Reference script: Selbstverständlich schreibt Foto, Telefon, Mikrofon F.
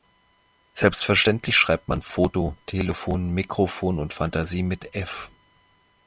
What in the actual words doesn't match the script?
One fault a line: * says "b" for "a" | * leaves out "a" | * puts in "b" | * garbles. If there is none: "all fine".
* puts in "man"
* puts in "und Fantasie mit"